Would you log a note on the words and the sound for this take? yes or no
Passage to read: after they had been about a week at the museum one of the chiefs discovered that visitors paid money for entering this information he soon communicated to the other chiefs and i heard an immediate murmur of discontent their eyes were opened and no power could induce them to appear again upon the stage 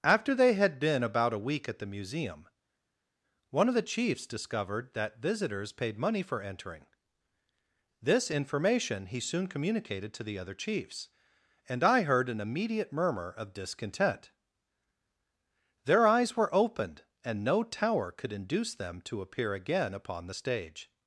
yes